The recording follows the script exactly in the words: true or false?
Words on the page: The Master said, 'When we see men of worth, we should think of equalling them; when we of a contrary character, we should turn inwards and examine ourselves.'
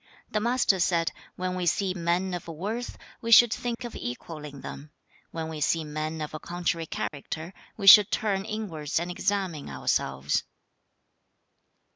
false